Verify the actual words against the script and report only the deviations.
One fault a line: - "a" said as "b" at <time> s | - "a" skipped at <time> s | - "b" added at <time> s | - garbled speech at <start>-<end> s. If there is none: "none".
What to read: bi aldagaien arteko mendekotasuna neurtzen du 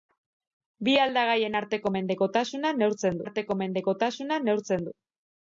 - "arteko mendekotasuna neurtzen" added at 3.3 s